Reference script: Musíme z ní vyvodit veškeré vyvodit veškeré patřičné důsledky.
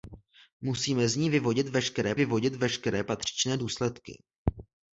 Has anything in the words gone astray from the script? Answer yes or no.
no